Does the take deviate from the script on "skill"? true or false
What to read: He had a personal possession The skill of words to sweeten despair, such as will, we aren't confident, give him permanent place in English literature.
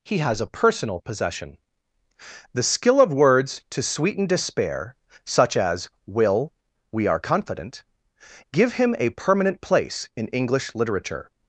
false